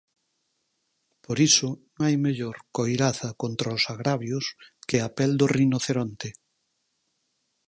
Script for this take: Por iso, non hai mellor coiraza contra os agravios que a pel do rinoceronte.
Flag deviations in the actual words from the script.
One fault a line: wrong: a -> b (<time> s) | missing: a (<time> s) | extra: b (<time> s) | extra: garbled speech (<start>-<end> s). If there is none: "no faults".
missing: non (1.7 s)